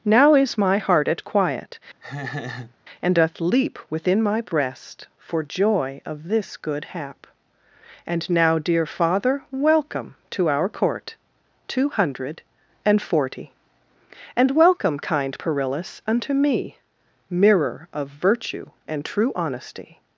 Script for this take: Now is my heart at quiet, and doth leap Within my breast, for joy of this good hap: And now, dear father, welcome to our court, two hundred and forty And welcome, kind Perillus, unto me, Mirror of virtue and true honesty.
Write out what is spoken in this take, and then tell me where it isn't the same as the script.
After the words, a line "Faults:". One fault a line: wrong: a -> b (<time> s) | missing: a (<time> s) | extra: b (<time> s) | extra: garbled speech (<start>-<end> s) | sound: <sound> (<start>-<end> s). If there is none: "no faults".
Now is my heart at quiet, and doth leap Within my breast, for joy of this good hap: And now, dear father, welcome to our court, two hundred and forty And welcome, kind Perillus, unto me, Mirror of virtue and true honesty.
Faults:
sound: laugh (2.0-2.8 s)